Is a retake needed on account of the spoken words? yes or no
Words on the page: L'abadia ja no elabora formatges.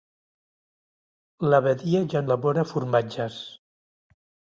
yes